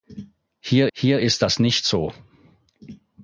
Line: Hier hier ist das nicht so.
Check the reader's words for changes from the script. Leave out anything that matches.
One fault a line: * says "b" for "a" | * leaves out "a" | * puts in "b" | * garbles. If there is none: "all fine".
all fine